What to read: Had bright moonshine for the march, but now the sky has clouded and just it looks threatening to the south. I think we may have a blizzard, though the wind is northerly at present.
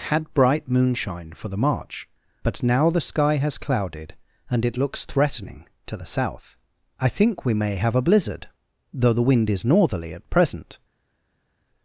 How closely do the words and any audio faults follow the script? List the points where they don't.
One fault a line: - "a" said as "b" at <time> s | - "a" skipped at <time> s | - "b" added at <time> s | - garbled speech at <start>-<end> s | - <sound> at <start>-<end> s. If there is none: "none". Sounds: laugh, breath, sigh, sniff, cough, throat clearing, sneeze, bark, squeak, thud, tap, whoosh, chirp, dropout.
- "just" skipped at 4.7 s